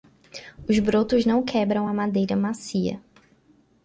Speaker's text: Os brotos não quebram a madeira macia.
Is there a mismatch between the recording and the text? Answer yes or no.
no